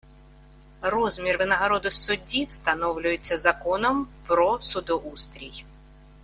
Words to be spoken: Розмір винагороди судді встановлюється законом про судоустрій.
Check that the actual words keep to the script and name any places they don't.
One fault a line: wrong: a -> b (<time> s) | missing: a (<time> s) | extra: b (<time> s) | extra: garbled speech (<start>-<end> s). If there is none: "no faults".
no faults